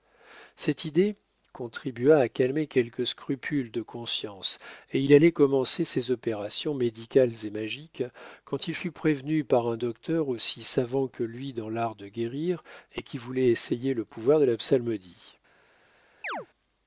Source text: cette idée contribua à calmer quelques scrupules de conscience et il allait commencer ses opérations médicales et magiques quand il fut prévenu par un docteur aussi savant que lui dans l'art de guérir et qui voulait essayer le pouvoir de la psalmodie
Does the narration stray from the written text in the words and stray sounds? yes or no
yes